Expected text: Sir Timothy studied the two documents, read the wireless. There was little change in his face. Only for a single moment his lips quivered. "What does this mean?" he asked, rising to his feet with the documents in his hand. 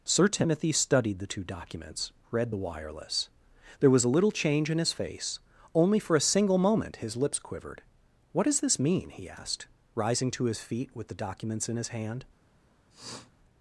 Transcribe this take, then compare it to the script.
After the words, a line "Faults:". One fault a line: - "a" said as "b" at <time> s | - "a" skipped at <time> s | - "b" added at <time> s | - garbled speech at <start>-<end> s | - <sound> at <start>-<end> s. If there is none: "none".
Sir Timothy studied the two documents, read the wireless. There was a little change in his face. Only for a single moment his lips quivered. "What does this mean?" he asked, rising to his feet with the documents in his hand.
Faults:
- "a" added at 4.0 s
- sniff at 12.9-13.3 s